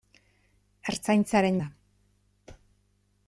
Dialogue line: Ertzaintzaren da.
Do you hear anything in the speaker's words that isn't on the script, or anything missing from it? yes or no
no